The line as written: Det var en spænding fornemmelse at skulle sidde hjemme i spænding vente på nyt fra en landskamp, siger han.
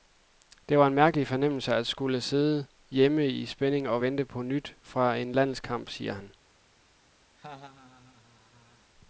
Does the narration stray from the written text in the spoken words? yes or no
yes